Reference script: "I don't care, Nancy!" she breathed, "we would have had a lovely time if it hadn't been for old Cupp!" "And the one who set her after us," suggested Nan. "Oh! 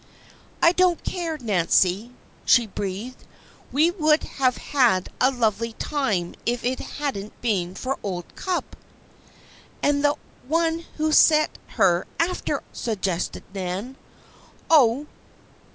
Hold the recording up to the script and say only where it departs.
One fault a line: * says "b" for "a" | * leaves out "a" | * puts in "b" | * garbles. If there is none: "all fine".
* leaves out "us"